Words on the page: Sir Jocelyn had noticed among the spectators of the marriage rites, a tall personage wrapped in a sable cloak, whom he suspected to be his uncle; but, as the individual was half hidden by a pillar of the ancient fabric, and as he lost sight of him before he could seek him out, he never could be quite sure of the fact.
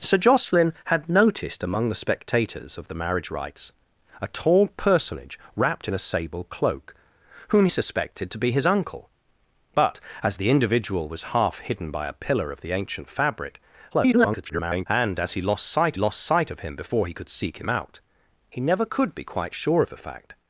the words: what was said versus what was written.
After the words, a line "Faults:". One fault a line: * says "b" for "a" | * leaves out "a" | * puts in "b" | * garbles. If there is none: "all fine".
Sir Jocelyn had noticed among the spectators of the marriage rites, a tall personage wrapped in a sable cloak, whom suspected to be his uncle; but, as the individual was half hidden by a pillar of the ancient fabric, [garbled] and as he lost sight lost sight of him before he could seek him out, he never could be quite sure of the fact.
Faults:
* leaves out "he"
* garbles
* puts in "lost sight"